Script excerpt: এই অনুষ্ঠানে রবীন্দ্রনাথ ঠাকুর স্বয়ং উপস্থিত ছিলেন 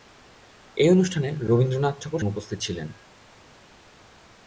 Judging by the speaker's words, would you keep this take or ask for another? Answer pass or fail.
fail